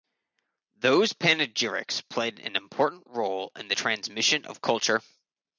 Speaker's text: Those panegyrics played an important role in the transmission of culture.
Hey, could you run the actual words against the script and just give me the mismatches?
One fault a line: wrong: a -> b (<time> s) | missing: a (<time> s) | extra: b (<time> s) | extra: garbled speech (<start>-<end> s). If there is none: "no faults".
no faults